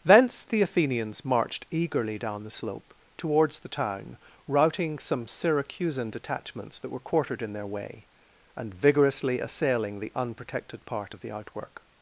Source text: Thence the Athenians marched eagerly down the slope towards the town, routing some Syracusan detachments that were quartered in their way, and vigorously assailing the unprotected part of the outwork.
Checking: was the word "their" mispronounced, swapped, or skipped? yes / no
no